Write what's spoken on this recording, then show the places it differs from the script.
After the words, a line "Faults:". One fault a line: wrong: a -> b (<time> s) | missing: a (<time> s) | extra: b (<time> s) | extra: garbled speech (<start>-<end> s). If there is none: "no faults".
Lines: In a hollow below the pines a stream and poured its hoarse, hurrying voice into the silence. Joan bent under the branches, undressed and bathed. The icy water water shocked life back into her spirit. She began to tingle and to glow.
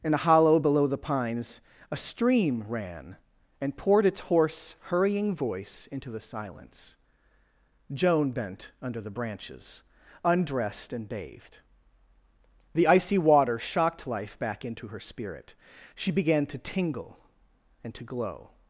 In a hollow below the pines a stream ran and poured its hoarse, hurrying voice into the silence. Joan bent under the branches, undressed and bathed. The icy water shocked life back into her spirit. She began to tingle and to glow.
Faults:
extra: ran (2.7 s)
missing: water (13.6 s)